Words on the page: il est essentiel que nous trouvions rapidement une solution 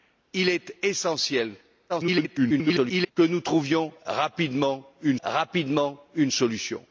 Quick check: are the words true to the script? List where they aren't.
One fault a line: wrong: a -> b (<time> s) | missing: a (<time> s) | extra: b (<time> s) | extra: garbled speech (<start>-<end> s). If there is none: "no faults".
extra: garbled speech (1.9-3.1 s)
extra: rapidement une (5.2 s)